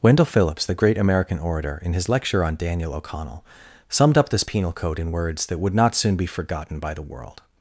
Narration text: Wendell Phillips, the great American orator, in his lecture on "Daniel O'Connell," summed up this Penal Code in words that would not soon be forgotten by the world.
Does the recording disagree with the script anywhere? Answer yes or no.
no